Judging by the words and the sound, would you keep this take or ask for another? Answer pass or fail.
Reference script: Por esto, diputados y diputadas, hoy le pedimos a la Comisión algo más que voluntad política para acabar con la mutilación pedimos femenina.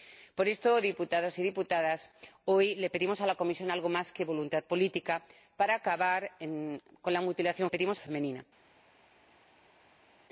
pass